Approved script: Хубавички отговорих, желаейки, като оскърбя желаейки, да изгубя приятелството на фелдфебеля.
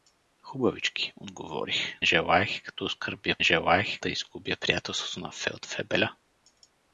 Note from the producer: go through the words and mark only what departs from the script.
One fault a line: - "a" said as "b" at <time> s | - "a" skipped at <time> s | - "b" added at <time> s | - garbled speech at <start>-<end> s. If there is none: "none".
none